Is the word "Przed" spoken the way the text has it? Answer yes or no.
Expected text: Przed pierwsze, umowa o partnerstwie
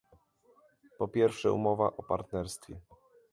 no